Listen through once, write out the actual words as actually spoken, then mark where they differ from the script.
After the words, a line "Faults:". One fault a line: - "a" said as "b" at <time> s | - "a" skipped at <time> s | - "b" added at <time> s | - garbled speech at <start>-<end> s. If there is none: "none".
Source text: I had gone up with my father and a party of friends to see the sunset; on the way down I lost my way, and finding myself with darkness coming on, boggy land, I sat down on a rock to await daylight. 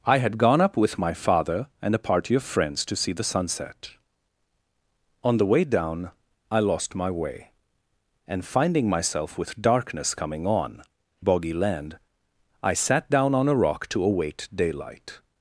I had gone up with my father and a party of friends to see the sunset; on the way down I lost my way, and finding myself with darkness coming on, boggy land, I sat down on a rock to await daylight.
Faults:
none